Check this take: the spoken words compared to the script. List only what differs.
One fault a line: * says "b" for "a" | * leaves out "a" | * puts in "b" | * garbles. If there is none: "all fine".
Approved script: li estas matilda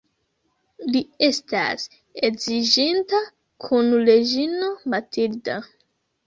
* puts in "edziĝinta kun reĝino"